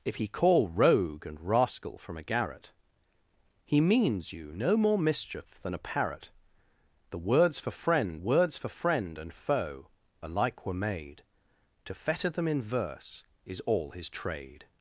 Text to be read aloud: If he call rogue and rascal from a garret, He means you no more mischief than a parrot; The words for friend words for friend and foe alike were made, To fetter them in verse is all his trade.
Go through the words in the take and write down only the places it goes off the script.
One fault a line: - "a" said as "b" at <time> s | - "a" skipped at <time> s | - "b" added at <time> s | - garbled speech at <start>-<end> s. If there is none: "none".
none